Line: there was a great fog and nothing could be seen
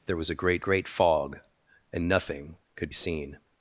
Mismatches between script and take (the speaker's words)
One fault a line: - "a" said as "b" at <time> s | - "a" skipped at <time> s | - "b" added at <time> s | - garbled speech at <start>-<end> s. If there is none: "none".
- "great" added at 0.6 s
- "be" skipped at 2.9 s